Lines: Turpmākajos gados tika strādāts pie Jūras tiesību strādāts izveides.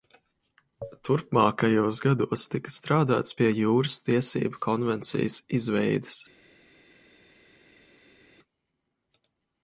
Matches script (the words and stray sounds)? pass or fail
fail